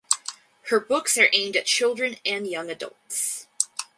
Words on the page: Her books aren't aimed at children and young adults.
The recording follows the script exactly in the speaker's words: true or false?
false